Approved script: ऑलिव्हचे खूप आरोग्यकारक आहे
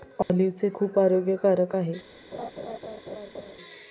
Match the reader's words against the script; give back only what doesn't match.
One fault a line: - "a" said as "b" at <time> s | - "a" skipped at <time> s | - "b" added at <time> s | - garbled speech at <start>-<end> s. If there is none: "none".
none